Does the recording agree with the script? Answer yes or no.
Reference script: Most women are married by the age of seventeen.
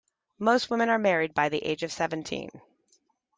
yes